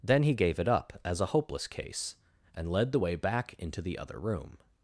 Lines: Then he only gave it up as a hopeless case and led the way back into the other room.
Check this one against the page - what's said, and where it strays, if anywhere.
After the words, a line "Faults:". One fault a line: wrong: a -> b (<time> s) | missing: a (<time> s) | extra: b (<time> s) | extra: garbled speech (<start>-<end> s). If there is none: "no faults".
Then he gave it up as a hopeless case and led the way back into the other room.
Faults:
missing: only (0.3 s)